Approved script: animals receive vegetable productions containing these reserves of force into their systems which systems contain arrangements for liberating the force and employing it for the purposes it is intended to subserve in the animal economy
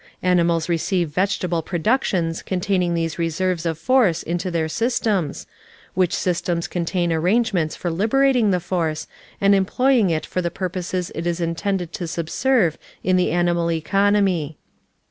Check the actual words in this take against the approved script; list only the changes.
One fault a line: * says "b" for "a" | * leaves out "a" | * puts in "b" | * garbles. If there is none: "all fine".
all fine